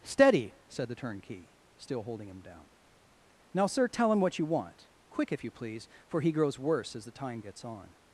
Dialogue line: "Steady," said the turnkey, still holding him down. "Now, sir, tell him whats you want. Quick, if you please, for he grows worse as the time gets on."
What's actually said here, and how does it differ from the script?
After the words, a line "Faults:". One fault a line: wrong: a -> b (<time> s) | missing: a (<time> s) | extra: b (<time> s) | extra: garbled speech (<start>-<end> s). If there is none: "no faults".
"Steady," said the turnkey, still holding him down. "Now, sir, tell him what you want. Quick, if you please, for he grows worse as the time gets on."
Faults:
wrong: whats -> what (4.2 s)